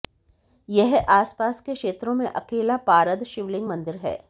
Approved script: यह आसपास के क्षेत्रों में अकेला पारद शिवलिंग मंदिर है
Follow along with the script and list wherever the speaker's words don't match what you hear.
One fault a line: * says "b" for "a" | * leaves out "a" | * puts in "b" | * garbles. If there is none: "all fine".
all fine